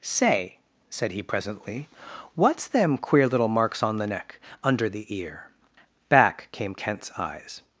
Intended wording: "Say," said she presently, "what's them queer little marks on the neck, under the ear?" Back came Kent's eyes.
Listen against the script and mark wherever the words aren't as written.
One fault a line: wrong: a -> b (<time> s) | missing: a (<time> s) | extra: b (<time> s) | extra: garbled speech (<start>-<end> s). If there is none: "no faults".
wrong: she -> he (1.1 s)